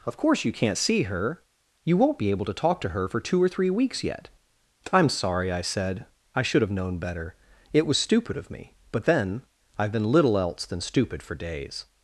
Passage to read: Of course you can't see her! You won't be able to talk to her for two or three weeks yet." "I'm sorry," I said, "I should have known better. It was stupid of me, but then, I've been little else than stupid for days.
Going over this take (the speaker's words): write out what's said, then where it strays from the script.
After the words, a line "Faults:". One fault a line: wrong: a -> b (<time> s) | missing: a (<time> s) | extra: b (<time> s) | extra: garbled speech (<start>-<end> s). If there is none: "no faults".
Of course you can't see her! You won't be able to talk to her for two or three weeks yet." "I'm sorry," I said, "I should have known better. It was stupid of me, but then, I've been little else than stupid for days.
Faults:
no faults